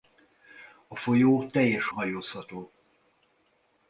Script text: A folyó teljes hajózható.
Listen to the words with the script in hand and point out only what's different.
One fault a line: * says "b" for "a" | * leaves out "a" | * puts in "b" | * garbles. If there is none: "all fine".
all fine